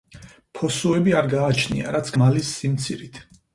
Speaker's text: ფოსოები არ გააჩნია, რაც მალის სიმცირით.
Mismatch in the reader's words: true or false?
false